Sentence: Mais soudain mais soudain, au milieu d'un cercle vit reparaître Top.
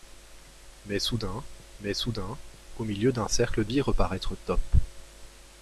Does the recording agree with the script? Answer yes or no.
yes